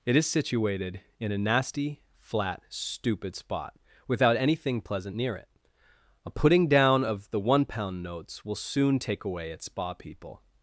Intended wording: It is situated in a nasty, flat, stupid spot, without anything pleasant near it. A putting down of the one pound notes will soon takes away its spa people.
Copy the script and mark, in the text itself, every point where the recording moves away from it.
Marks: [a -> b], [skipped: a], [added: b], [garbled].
It is situated in a nasty, flat, stupid spot, without anything pleasant near it. A putting down of the one pound notes will soon [takes -> take] away its spa people.